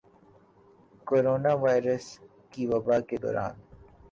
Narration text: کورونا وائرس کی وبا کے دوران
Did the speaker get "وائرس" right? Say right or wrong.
right